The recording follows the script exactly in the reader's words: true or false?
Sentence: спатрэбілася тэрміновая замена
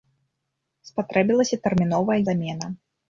true